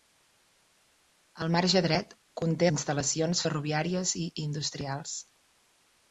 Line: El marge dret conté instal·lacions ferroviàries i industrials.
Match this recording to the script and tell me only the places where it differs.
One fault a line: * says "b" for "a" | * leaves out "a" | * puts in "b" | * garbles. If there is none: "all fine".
all fine